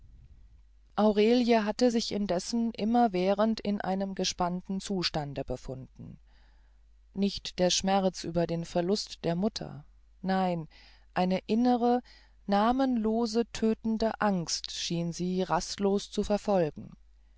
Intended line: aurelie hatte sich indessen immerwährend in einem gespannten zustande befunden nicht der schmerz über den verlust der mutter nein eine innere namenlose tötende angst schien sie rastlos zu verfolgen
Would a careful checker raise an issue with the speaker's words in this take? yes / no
no